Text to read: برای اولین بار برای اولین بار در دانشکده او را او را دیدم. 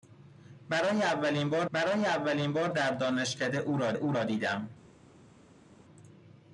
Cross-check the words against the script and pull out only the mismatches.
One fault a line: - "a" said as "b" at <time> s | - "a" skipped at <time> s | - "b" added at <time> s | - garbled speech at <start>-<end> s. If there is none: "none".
none